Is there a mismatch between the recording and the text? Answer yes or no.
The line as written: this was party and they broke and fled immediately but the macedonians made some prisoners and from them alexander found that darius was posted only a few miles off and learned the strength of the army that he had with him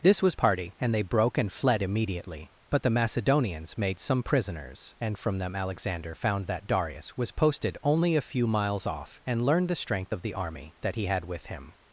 no